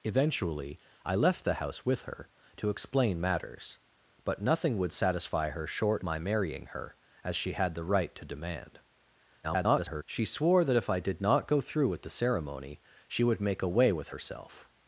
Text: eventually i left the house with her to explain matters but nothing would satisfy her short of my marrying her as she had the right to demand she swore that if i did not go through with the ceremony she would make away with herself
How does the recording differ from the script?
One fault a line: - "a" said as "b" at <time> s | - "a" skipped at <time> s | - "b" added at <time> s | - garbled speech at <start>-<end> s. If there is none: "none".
- "of" skipped at 6.0 s
- garbled speech at 9.4-10.0 s